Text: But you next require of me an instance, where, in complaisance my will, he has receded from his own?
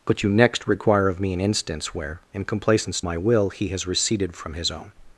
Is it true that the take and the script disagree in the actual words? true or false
false